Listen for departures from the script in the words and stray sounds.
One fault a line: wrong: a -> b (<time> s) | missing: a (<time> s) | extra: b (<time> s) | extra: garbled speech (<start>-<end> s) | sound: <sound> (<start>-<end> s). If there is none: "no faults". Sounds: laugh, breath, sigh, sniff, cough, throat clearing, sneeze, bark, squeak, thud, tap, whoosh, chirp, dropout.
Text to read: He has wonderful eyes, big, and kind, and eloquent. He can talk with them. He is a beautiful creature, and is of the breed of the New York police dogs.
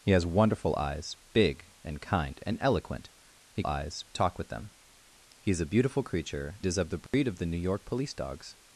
wrong: can -> eyes (3.7 s)
missing: and (6.6 s)
sound: dropout (7.1-7.1 s)